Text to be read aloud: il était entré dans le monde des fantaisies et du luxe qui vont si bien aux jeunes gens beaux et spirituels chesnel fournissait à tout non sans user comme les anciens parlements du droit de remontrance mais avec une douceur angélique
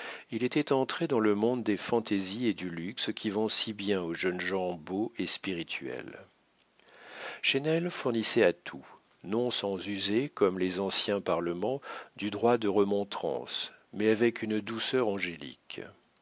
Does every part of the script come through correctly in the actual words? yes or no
yes